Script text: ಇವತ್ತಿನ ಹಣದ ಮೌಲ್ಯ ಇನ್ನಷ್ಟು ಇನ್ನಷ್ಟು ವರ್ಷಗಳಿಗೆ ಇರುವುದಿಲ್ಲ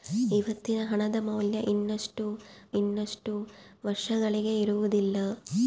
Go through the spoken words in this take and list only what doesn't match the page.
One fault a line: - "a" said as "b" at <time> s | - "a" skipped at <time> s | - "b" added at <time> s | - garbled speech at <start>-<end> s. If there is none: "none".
none